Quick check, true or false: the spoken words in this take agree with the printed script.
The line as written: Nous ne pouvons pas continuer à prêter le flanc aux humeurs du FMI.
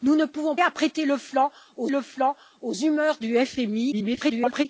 false